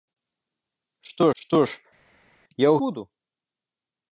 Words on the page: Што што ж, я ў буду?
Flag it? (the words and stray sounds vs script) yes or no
no